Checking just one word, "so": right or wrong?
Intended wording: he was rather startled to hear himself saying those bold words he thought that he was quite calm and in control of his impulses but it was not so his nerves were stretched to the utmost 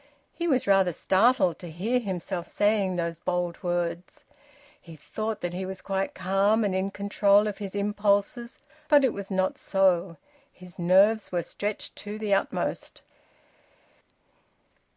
right